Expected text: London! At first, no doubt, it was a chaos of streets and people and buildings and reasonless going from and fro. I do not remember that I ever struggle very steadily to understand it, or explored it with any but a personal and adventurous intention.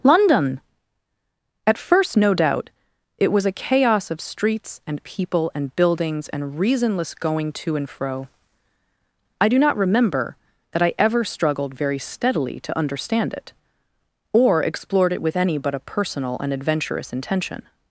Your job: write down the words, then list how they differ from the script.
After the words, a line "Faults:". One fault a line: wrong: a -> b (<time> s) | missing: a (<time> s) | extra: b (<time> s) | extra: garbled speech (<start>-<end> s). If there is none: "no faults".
London! At first, no doubt, it was a chaos of streets and people and buildings and reasonless going to and fro. I do not remember that I ever struggled very steadily to understand it, or explored it with any but a personal and adventurous intention.
Faults:
wrong: from -> to (7.5 s)
wrong: struggle -> struggled (11.2 s)